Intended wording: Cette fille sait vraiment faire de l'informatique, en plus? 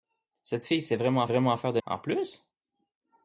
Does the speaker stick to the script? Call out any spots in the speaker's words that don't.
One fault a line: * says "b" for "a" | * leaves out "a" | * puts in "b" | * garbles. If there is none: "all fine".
* puts in "vraiment"
* leaves out "l'informatique"